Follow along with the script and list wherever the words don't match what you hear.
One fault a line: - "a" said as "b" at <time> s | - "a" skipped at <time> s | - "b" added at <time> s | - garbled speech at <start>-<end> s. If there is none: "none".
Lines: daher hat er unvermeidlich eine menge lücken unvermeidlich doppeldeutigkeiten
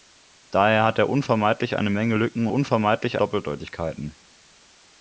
none